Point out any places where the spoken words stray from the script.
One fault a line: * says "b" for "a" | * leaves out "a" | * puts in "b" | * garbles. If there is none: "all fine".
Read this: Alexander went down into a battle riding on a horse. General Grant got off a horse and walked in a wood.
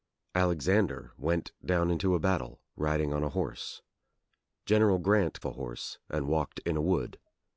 * leaves out "got off"